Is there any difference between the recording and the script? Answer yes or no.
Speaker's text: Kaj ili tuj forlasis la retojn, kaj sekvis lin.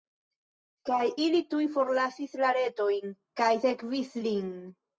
no